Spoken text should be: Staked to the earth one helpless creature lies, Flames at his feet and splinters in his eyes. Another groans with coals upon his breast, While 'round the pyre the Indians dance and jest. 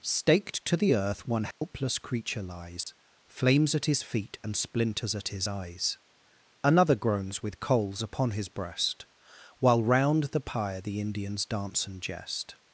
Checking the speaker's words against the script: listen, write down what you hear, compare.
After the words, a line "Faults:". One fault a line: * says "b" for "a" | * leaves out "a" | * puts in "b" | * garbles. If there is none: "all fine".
Staked to the earth one helpless creature lies, Flames at his feet and splinters at his eyes. Another groans with coals upon his breast, While 'round the pyre the Indians dance and jest.
Faults:
* says "at" for "in"